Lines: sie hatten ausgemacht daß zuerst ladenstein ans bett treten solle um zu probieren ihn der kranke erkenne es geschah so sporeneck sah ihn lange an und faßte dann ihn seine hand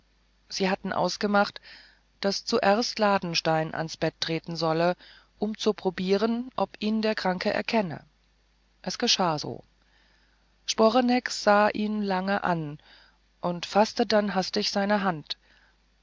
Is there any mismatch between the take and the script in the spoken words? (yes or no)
yes